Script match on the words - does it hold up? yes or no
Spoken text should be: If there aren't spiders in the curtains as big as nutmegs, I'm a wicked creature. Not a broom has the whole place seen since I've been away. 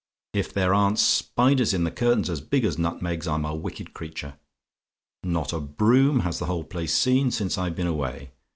yes